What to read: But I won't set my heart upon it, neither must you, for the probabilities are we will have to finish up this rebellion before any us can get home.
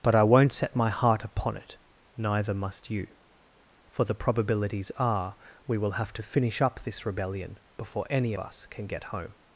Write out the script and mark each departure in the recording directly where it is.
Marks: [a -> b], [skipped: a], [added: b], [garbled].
But I won't set my heart upon it, neither must you, for the probabilities are we will have to finish up this rebellion before any us can get home.